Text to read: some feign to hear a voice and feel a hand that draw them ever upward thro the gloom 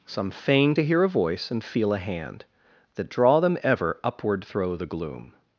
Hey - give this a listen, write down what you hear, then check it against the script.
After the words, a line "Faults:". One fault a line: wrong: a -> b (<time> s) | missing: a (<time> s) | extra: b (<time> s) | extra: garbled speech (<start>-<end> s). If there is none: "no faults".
some feign to hear a voice and feel a hand that draw them ever upward thro the gloom
Faults:
no faults